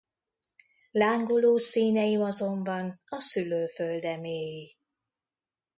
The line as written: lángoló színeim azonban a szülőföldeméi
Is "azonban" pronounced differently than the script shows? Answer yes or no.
no